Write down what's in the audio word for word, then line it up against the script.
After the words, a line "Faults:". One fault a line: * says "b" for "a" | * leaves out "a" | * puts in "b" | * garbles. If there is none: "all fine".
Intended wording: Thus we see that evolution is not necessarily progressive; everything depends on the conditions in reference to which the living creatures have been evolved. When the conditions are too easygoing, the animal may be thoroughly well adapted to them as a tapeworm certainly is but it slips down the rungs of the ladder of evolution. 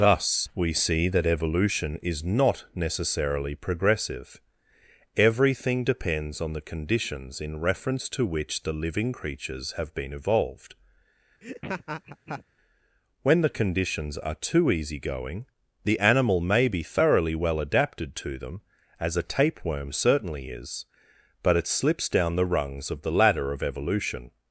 Thus we see that evolution is not necessarily progressive; everything depends on the conditions in reference to which the living creatures have been evolved. When the conditions are too easygoing, the animal may be thoroughly well adapted to them as a tapeworm certainly is but it slips down the rungs of the ladder of evolution.
Faults:
all fine